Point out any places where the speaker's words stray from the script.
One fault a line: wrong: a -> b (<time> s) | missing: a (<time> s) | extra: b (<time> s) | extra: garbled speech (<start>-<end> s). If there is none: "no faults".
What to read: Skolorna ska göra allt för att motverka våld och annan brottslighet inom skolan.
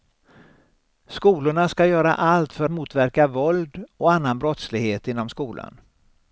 missing: att (2.7 s)